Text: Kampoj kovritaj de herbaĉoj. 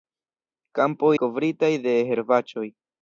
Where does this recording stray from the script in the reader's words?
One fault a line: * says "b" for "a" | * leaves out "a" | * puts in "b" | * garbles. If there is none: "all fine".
all fine